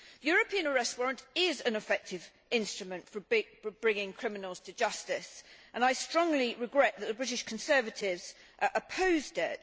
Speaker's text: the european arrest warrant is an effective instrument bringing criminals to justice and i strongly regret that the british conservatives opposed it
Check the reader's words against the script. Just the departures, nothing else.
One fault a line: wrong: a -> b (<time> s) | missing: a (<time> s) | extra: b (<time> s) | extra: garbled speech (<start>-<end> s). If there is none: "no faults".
extra: for (3.1 s)